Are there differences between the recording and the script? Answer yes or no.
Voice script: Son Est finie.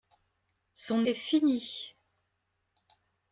no